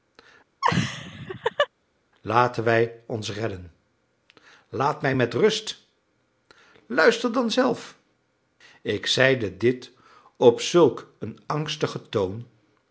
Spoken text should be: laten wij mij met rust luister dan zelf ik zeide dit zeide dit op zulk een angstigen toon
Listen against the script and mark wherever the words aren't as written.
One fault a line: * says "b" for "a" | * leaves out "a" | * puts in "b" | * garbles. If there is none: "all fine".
* puts in "ons redden laat"
* leaves out "zeide dit"